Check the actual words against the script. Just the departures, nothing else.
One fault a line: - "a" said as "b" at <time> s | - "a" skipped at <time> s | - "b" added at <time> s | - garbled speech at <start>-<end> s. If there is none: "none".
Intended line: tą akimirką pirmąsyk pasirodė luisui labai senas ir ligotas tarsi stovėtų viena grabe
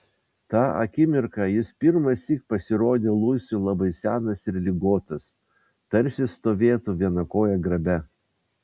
- "jis" added at 1.6 s
- "koja" added at 7.4 s